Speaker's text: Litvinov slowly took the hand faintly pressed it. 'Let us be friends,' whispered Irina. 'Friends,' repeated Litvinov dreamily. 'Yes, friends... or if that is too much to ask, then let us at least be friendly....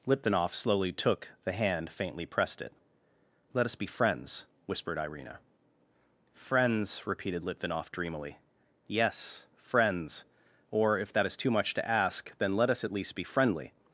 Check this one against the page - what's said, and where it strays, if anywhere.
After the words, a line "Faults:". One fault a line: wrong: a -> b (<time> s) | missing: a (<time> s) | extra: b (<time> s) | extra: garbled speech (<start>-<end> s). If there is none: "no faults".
Litvinov slowly took the hand faintly pressed it. 'Let us be friends,' whispered Irina. 'Friends,' repeated Litvinov dreamily. 'Yes, friends... or if that is too much to ask, then let us at least be friendly....
Faults:
no faults